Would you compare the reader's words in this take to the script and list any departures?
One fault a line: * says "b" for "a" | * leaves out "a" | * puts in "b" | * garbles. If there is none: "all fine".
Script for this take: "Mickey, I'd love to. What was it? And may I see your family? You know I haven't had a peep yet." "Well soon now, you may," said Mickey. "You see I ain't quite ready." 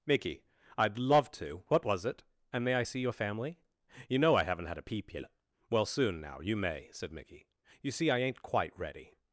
all fine